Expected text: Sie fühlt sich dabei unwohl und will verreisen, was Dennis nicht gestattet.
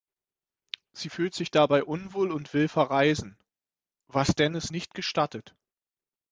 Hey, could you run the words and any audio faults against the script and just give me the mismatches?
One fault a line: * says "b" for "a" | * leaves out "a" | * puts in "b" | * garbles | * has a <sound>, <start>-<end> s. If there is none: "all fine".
all fine